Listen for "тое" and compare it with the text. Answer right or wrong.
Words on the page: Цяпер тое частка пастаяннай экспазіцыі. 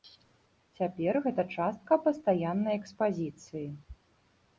wrong